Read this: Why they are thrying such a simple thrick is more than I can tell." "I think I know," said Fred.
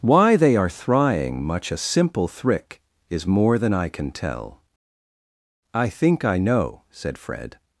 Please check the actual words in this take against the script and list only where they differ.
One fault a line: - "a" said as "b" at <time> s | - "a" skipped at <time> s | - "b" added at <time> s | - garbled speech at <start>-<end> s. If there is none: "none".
- "such" said as "much" at 1.4 s